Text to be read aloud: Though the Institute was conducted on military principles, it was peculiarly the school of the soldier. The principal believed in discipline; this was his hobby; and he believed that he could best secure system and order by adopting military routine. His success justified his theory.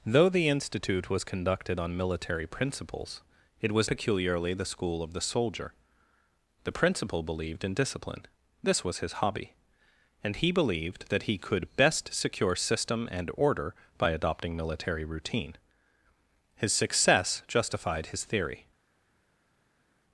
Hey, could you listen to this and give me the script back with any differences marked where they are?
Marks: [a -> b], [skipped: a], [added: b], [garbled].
Though the Institute was conducted on military principles, it was peculiarly the school of the soldier. The principal believed in discipline; this was his hobby; and he believed that he could best secure system and order by adopting military routine. His success justified his theory.